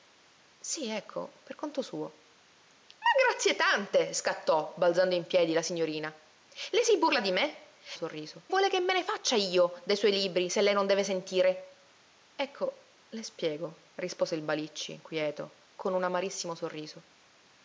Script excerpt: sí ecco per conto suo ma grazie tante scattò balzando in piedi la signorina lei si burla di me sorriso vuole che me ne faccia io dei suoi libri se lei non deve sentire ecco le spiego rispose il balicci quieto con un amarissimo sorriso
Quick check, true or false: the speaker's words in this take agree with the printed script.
true